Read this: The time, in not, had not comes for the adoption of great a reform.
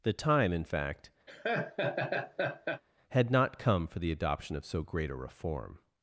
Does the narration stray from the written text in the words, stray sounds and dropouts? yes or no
yes